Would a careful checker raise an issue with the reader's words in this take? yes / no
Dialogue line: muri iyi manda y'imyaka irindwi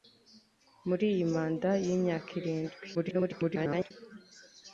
yes